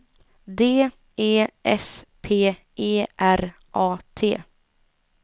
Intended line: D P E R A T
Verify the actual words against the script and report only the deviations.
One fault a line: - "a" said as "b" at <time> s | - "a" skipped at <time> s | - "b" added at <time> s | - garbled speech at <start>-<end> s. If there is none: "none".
- "E S" added at 1.1 s